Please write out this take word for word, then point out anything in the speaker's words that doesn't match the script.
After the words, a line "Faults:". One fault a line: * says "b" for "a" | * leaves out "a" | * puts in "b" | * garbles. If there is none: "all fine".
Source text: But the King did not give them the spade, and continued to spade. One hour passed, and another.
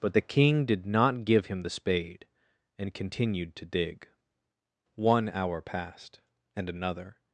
But the King did not give him the spade, and continued to dig. One hour passed, and another.
Faults:
* says "him" for "them"
* says "dig" for "spade"